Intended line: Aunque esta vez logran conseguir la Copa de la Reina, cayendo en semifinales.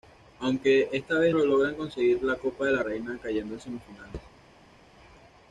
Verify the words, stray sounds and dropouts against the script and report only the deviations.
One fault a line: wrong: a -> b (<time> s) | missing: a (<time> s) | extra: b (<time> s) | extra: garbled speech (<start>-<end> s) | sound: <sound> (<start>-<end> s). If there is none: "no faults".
no faults